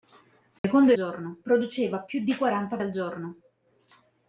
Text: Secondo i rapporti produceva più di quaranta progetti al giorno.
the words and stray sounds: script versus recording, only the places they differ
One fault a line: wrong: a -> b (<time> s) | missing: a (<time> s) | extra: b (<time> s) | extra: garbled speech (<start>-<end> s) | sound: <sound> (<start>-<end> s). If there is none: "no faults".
sound: dropout (0.6-0.6 s)
wrong: rapporti -> giorno (0.9 s)
missing: progetti (2.8 s)